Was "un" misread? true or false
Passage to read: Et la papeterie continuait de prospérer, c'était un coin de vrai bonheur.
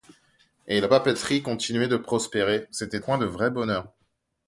true